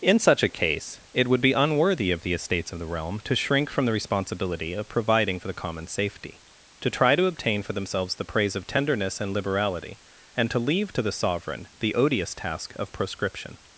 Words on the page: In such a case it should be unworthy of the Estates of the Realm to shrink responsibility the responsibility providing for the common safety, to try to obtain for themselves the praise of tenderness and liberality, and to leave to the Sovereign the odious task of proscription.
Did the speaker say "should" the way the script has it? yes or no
no